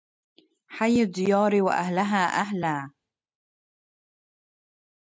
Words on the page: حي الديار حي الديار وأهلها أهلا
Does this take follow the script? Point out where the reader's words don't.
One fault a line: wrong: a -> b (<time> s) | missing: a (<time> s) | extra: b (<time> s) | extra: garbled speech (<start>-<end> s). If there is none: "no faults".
missing: حي الديار (1.6 s)